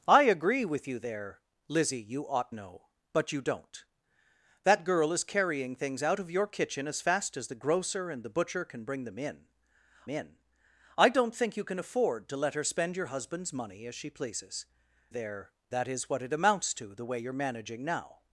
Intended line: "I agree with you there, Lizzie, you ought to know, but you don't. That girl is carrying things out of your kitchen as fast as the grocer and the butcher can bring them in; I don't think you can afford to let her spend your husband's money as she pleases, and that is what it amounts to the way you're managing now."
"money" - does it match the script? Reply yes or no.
yes